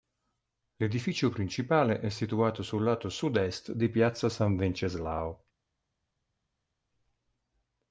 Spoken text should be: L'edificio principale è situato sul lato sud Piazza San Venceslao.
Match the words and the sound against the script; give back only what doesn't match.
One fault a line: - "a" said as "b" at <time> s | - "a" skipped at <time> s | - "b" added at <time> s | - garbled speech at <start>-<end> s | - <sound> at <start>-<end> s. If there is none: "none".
- "est di" added at 3.4 s